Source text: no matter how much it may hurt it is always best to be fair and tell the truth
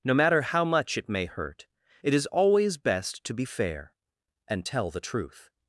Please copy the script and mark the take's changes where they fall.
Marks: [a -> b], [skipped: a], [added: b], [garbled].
no matter how much it may hurt it is always best to be fair and tell the truth